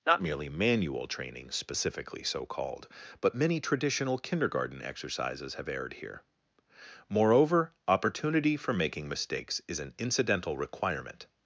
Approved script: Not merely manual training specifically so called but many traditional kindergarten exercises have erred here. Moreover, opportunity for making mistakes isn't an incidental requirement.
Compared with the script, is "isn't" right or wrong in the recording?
wrong